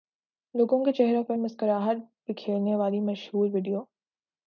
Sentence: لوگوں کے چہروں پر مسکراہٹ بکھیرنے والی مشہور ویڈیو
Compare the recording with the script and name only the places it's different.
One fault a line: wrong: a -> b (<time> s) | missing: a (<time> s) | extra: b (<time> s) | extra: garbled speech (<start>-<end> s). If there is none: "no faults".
no faults